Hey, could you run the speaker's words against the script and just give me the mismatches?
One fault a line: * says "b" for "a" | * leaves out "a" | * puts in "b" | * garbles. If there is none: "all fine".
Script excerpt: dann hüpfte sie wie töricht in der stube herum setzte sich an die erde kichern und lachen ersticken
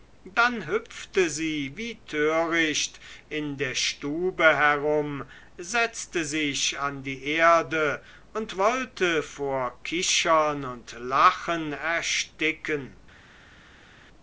* puts in "und wollte vor"